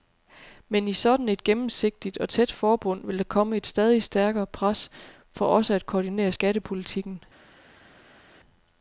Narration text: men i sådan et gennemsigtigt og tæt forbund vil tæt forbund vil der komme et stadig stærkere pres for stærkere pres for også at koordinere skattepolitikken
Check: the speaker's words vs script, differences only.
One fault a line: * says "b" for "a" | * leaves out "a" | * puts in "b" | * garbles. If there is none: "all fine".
* leaves out "tæt forbund vil"
* leaves out "stærkere pres for"